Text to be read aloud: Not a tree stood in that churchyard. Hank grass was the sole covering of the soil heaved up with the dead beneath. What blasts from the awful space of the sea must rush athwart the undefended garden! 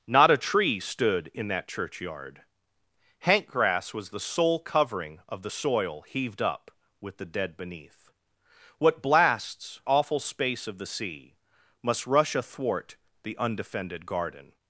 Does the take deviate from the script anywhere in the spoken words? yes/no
yes